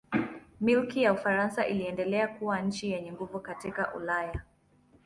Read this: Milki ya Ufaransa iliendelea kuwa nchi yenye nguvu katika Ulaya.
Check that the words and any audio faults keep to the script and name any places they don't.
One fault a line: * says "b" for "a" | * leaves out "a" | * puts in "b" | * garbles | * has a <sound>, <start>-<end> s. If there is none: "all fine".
all fine